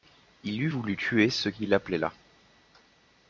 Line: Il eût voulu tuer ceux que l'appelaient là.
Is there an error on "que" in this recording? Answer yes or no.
yes